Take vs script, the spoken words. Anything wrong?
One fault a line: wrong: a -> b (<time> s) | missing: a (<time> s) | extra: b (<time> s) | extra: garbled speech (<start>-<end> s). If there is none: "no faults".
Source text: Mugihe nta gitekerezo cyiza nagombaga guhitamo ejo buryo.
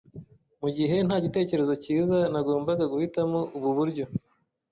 wrong: ejo -> ubu (3.6 s)